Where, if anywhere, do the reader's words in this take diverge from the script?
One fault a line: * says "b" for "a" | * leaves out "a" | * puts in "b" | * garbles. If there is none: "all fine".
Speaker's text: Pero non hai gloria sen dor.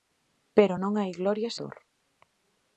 * leaves out "sen"